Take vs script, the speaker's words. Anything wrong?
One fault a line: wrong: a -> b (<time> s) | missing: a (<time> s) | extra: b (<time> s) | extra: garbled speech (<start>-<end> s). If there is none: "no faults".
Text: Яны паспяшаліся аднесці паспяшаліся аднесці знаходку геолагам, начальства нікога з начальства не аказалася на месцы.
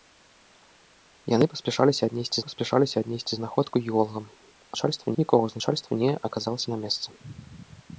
no faults